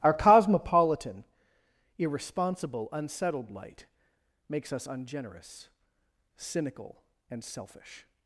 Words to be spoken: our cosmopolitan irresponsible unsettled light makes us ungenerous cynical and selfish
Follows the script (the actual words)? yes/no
yes